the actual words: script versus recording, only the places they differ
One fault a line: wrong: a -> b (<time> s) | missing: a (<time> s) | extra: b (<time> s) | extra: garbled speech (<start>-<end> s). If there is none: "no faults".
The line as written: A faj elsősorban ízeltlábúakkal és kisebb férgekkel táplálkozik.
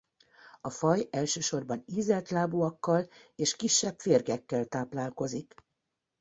no faults